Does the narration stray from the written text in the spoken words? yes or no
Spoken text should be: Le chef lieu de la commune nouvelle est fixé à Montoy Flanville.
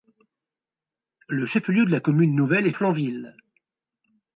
yes